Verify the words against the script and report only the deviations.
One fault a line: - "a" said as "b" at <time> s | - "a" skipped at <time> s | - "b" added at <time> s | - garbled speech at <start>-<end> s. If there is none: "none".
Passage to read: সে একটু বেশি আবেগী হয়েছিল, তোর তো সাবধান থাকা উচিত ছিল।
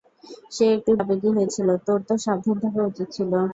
- "বেশি" skipped at 0.9 s